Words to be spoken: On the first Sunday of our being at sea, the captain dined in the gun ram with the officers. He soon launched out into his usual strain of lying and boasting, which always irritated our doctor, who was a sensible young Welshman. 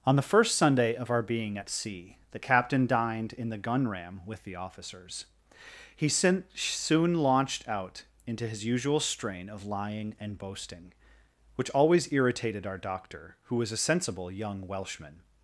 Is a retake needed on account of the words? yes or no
no